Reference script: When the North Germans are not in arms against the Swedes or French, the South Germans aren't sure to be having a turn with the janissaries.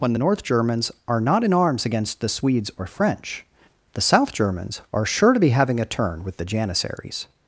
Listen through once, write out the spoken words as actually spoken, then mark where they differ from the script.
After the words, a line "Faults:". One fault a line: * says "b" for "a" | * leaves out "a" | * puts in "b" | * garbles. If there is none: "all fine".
When the North Germans are not in arms against the Swedes or French, the South Germans are sure to be having a turn with the janissaries.
Faults:
* says "are" for "aren't"